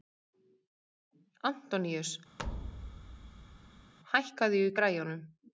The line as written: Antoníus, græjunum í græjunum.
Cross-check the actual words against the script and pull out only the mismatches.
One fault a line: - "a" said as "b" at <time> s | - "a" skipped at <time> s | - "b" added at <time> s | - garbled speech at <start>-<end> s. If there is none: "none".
- "græjunum" said as "hækkaðu" at 4.1 s